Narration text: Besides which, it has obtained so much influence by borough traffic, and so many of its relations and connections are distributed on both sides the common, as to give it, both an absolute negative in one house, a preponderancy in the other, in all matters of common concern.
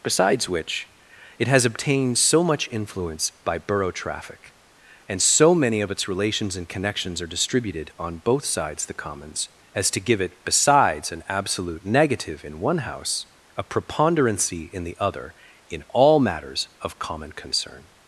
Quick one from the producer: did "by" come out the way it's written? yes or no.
yes